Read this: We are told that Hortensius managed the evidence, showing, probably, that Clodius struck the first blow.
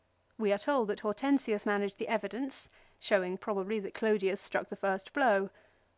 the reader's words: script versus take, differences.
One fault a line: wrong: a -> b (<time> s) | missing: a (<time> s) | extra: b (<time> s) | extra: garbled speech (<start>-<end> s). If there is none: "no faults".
no faults